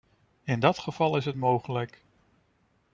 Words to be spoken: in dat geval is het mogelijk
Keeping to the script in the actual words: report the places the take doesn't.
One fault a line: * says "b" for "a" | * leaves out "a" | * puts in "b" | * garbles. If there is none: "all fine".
all fine